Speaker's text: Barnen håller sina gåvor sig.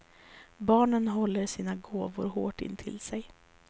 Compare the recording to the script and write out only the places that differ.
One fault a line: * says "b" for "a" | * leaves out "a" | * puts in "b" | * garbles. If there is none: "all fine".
* puts in "hårt intill"